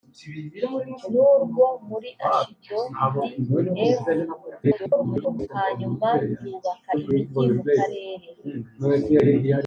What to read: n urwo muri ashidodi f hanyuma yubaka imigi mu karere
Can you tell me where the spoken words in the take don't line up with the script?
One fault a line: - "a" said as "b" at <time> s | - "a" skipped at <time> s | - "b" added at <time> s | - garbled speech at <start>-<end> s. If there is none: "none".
- garbled speech at 4.6-5.5 s